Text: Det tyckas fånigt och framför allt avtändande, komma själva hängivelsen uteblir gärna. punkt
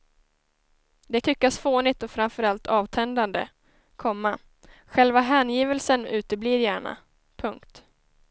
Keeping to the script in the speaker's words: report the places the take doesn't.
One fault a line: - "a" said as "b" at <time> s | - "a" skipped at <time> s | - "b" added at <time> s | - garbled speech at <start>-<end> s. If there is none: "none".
none